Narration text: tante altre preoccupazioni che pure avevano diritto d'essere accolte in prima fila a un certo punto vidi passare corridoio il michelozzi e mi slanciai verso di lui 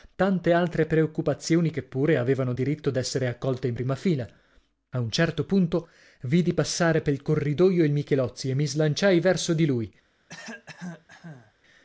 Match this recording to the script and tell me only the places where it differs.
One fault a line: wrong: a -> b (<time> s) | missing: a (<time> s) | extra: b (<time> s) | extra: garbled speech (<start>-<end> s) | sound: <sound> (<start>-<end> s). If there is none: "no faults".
extra: pel (7.0 s)
sound: cough (10.3-11.5 s)